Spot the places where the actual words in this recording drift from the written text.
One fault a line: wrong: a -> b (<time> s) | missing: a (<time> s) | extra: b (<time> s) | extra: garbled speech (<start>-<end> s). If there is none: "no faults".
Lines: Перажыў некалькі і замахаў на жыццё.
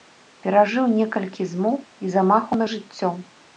extra: змоў (1.5 s)